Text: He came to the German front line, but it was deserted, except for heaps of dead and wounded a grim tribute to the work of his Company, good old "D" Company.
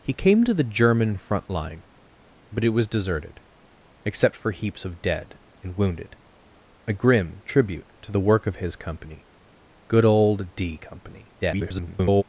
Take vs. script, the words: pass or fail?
fail